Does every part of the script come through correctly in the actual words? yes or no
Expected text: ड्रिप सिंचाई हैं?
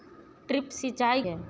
yes